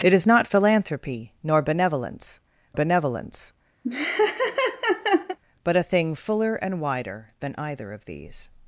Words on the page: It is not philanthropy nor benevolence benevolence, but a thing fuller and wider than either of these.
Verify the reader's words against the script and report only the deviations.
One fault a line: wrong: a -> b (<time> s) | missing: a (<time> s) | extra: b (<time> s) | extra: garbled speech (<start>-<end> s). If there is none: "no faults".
no faults